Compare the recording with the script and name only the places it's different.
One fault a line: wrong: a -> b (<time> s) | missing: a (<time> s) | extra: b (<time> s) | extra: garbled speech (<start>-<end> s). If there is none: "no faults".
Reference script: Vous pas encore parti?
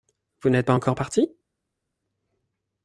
extra: n'êtes (0.5 s)